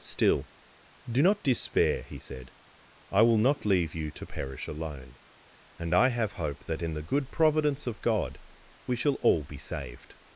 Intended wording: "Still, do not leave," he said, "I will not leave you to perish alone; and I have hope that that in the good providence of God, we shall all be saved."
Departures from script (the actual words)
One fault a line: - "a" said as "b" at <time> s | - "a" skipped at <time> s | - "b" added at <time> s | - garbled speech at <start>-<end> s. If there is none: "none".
- "leave" said as "despair" at 1.4 s
- "that" skipped at 6.8 s